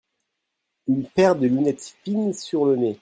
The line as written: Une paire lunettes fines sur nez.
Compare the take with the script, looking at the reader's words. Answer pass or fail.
fail